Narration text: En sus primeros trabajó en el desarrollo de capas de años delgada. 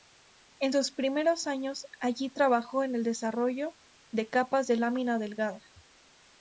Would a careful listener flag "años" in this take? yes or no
yes